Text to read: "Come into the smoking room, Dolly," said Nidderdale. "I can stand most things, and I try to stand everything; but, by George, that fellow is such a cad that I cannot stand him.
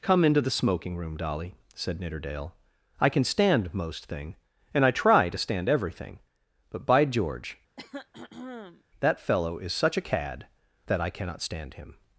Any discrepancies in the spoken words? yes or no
yes